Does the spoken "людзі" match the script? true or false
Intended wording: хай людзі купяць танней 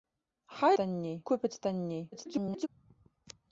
false